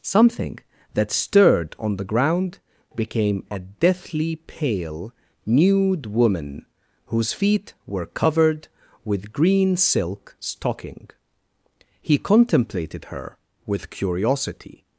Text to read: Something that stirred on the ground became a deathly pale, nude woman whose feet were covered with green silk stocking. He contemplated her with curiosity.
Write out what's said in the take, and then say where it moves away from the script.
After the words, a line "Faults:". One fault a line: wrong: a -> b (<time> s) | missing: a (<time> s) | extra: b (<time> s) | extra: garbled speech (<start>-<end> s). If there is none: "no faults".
Something that stirred on the ground became a deathly pale, nude woman whose feet were covered with green silk stocking. He contemplated her with curiosity.
Faults:
no faults